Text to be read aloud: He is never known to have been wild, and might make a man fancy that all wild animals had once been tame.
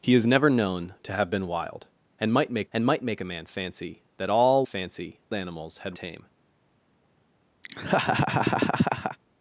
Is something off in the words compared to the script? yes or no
yes